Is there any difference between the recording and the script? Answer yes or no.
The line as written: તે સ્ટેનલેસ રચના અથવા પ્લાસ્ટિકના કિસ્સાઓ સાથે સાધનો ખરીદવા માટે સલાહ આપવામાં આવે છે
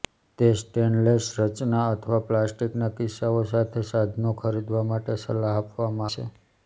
yes